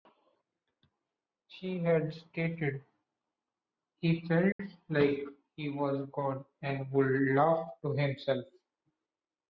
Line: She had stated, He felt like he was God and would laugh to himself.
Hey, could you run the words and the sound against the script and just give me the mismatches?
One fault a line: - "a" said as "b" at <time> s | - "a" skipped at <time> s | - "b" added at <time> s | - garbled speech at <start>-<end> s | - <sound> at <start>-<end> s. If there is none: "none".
- dropout at 4.5-4.6 s